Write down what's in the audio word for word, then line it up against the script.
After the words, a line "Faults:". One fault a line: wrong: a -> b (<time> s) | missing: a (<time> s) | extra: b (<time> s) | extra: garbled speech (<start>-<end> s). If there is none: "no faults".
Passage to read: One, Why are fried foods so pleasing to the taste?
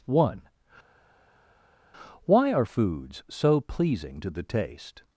One, Why are foods so pleasing to the taste?
Faults:
missing: fried (2.7 s)